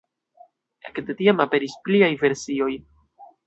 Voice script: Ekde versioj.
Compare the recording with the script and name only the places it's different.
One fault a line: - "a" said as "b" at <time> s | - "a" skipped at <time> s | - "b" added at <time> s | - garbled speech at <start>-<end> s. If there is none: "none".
- "tiam aperis pliaj" added at 1.2 s